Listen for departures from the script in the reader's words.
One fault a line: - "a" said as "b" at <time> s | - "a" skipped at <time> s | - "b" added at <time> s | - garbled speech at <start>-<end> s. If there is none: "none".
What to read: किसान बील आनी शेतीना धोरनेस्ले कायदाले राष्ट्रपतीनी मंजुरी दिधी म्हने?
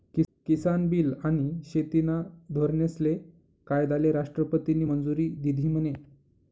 none